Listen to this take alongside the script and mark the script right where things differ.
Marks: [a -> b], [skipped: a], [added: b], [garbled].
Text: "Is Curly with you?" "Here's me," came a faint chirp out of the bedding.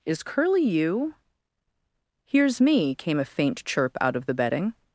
"Is Curly [skipped: with] you?" "Here's me," came a faint chirp out of the bedding.